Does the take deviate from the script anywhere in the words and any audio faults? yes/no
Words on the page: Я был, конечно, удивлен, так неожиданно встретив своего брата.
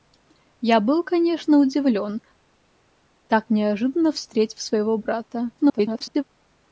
yes